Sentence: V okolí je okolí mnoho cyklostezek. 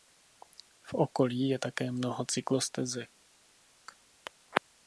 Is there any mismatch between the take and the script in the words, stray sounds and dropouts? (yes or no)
yes